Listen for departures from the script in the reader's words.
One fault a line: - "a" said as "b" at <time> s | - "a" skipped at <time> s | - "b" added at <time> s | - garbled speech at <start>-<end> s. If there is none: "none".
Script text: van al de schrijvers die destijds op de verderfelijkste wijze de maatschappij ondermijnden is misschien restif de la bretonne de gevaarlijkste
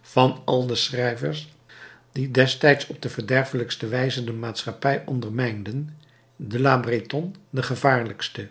- "is misschien restif" skipped at 5.9 s